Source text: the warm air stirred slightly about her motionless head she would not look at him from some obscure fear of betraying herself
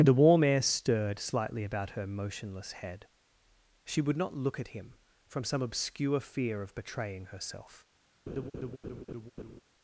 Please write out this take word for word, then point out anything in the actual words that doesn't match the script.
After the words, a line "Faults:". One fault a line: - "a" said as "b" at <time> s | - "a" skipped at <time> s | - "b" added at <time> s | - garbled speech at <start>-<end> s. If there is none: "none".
the warm air stirred slightly about her motionless head she would not look at him from some obscure fear of betraying herself
Faults:
none